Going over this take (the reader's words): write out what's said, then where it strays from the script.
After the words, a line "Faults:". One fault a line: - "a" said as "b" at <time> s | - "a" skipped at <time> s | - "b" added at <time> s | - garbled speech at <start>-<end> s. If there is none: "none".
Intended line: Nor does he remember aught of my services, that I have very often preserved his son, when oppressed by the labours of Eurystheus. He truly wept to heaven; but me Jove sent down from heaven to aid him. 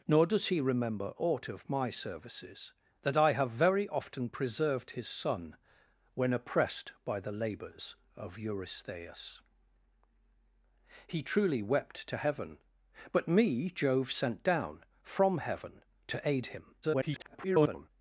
Nor does he remember aught of my services, that I have very often preserved his son, when oppressed by the labours of Eurystheus. He truly wept to heaven; but me Jove sent down from heaven to aid him. [garbled]
Faults:
- garbled speech at 16.8-17.9 s